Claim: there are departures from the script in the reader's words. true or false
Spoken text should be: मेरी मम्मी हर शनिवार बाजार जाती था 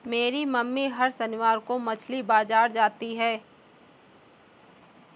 true